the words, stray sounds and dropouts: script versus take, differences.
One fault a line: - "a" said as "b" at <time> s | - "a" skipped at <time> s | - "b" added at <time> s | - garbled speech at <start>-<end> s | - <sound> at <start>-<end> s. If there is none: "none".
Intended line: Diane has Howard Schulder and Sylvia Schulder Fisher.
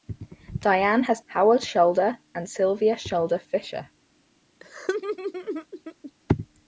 - laugh at 4.6-6.1 s